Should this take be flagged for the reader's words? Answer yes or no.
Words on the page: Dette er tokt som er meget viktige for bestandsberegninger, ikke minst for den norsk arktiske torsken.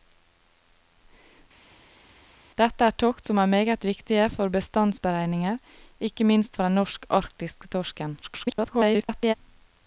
yes